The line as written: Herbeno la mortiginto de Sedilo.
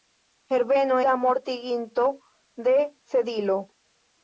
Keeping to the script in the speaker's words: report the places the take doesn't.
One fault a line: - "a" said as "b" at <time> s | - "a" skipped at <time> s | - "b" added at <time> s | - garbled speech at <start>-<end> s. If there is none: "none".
none